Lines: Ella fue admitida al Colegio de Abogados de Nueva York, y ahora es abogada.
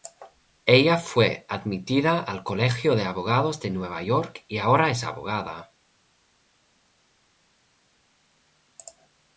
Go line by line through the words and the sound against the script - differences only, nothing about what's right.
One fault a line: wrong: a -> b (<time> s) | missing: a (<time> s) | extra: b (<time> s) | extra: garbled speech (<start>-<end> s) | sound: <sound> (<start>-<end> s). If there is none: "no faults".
no faults